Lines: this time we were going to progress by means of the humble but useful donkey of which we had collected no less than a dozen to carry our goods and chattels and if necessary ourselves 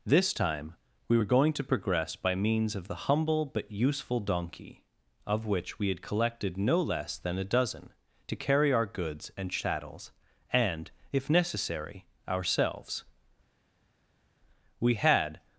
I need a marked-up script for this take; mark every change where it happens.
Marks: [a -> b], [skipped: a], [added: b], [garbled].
this time we were going to progress by means of the humble but useful donkey of which we had collected no less than a dozen to carry our goods and chattels and if necessary ourselves [added: we had]